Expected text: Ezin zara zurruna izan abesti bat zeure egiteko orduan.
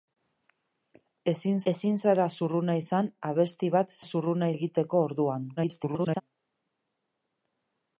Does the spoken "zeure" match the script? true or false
false